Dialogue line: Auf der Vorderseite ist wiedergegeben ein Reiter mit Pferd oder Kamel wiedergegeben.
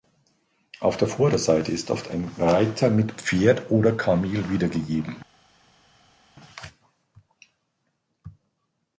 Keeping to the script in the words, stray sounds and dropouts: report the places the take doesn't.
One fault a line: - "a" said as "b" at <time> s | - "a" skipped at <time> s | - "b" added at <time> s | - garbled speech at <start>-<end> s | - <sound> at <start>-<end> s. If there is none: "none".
- "wiedergegeben" said as "oft" at 1.9 s